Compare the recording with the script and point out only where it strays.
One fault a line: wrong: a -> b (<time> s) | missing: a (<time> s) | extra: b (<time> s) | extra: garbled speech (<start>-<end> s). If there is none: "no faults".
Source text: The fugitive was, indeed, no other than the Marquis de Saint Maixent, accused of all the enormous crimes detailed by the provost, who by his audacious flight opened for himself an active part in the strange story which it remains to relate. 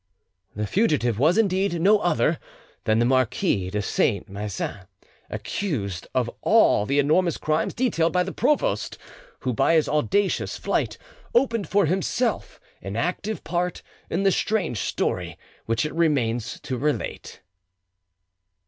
no faults